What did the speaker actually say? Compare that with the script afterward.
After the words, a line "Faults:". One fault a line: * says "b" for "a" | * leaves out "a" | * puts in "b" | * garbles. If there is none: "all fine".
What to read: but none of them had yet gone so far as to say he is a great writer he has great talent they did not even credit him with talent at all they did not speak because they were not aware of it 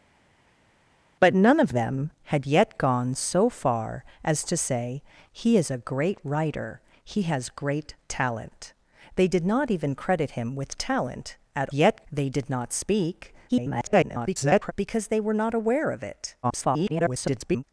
but none of them had yet gone so far as to say he is a great writer he has great talent they did not even credit him with talent at yet they did not speak [garbled] because they were not aware of it [garbled]
Faults:
* says "yet" for "all"
* garbles
* garbles